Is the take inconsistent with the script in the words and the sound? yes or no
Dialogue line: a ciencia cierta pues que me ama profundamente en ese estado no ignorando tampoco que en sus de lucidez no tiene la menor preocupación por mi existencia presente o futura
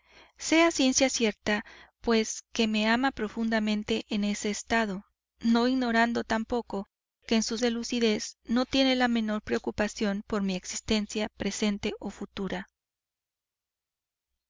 no